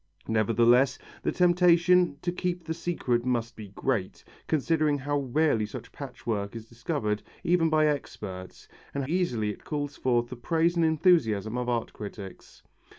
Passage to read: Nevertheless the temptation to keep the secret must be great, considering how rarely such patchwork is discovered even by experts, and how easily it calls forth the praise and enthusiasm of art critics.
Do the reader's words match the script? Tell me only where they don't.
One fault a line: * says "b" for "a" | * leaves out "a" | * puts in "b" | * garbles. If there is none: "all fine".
* leaves out "how"